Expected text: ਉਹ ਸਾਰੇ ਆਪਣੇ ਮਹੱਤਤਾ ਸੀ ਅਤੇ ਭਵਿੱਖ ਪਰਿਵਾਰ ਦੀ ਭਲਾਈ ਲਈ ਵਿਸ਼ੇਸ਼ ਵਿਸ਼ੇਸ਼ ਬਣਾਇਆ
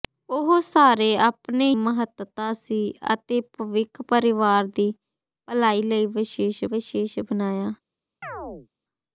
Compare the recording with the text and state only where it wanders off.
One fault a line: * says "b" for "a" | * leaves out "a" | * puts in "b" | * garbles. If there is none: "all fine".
all fine